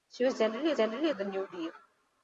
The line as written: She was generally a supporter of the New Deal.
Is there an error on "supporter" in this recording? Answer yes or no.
yes